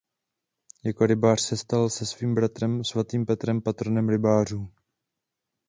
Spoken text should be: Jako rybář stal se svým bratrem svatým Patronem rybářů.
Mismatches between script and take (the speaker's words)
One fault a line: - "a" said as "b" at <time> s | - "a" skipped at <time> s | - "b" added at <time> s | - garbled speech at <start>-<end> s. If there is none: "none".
- "se" added at 1.4 s
- "Petrem" added at 3.2 s